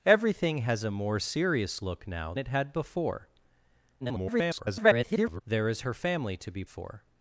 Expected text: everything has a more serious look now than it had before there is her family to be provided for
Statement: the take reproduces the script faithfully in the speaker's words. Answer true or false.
false